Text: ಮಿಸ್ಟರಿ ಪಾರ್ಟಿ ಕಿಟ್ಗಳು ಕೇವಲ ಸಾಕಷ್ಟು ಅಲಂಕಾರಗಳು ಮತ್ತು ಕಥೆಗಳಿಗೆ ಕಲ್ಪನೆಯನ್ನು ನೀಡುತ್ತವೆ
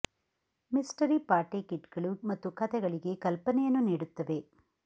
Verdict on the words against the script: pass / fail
fail